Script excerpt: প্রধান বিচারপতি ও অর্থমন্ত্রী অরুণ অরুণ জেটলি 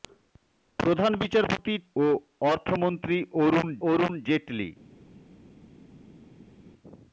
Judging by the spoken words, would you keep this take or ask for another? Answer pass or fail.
pass